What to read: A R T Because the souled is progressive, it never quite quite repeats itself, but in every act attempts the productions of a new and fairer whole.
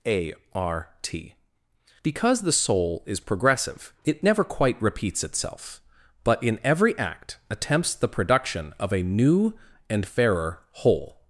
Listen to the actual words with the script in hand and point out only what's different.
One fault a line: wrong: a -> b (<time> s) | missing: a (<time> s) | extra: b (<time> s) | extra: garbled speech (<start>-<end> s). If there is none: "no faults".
wrong: souled -> soul (2.5 s)
missing: quite (4.8 s)
wrong: productions -> production (8.1 s)